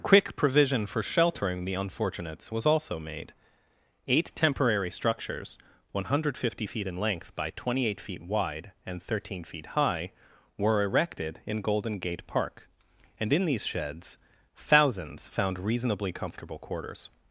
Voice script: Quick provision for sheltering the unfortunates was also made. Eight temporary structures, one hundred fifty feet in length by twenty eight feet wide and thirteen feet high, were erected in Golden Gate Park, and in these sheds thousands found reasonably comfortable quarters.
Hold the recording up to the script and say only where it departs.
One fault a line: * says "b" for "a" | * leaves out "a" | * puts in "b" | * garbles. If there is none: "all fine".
all fine